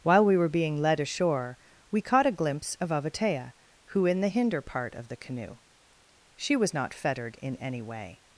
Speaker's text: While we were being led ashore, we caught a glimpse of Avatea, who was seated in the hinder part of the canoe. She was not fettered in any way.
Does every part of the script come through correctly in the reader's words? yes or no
no